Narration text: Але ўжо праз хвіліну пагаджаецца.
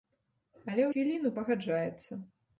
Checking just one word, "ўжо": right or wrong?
wrong